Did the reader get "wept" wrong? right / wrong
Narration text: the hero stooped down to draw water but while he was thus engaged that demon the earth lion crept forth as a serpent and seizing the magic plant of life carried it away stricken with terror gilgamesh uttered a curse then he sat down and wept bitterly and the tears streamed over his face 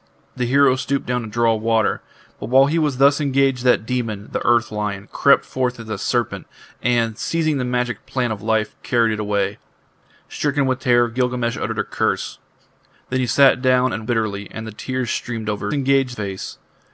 wrong